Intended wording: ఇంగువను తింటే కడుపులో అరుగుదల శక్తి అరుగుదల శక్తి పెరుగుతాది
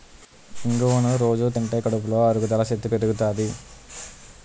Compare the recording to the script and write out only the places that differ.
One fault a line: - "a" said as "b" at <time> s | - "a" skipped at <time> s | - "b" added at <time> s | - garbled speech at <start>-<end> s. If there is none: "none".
- "రొజూ" added at 1.2 s
- "అరుగుదల శక్తి" skipped at 2.9 s